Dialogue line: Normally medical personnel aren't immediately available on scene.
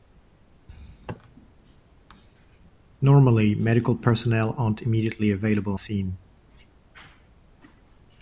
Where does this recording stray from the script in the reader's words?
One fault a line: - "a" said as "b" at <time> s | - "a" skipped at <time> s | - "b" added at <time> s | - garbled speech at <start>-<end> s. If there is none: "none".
- "on" skipped at 5.8 s